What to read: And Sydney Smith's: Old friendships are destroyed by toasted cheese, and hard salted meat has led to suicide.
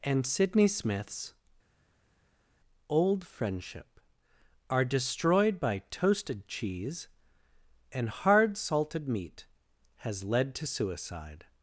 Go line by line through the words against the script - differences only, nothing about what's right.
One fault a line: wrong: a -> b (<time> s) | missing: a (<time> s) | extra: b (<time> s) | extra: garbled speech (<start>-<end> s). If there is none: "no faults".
wrong: friendships -> friendship (3.3 s)